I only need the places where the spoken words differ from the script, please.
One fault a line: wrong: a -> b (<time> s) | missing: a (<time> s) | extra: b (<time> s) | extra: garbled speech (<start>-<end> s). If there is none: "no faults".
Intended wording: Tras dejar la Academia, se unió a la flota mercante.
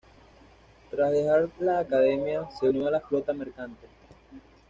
no faults